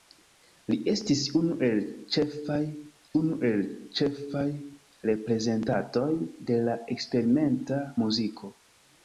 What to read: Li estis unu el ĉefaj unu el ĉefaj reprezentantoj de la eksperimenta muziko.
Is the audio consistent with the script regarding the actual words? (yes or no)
yes